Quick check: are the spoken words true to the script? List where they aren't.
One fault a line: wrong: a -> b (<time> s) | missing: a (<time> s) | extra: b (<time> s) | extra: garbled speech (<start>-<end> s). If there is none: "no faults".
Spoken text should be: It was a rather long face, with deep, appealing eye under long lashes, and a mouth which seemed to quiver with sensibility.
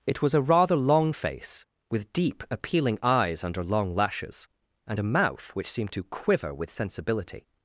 wrong: eye -> eyes (3.0 s)